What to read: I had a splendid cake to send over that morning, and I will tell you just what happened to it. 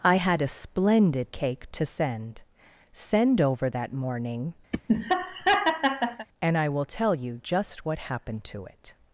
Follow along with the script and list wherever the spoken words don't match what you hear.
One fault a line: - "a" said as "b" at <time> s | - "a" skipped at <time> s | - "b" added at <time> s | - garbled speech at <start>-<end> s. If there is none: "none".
- "send" added at 2.9 s